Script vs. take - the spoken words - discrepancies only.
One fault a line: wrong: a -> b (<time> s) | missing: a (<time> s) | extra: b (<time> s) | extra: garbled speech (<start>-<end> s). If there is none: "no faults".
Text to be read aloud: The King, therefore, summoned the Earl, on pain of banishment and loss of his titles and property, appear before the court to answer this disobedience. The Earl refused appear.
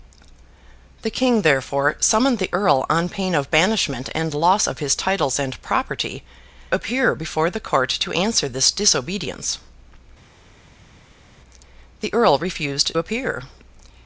no faults